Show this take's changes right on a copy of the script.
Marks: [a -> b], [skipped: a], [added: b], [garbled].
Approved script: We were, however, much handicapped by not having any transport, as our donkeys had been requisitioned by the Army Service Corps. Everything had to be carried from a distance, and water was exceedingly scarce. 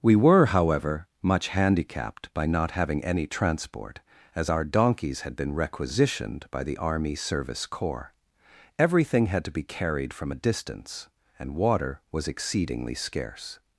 We were, however, much handicapped by not having any transport, as our donkeys had been requisitioned by the Army Service Corps. Everything had to be carried from a distance, and water was exceedingly scarce.